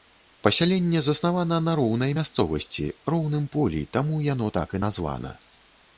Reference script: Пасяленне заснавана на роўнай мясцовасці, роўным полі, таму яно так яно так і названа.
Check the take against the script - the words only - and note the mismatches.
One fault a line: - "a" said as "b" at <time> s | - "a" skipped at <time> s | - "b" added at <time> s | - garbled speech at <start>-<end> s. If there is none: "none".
- "яно так" skipped at 4.7 s